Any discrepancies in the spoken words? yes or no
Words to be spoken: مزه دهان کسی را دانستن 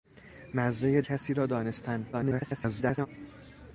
yes